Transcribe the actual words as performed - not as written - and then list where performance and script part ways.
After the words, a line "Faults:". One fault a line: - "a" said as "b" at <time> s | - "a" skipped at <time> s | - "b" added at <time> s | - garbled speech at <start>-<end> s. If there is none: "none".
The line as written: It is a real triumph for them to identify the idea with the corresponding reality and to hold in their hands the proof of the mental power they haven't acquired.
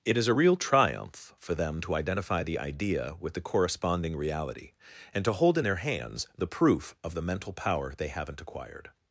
It is a real triumph for them to identify the idea with the corresponding reality and to hold in their hands the proof of the mental power they haven't acquired.
Faults:
none